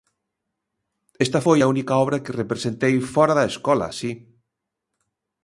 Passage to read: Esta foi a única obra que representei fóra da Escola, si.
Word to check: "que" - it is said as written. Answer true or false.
true